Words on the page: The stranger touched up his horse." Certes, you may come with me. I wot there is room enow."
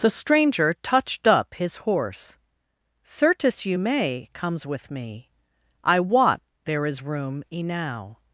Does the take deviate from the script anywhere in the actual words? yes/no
yes